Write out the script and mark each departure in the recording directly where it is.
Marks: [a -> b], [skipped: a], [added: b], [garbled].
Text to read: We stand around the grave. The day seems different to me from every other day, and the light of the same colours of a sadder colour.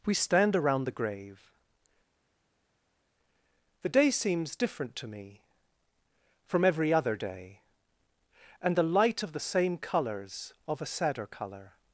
We stand around the grave. The day seems different to me from every other day, and the light of the same colours of a sadder colour.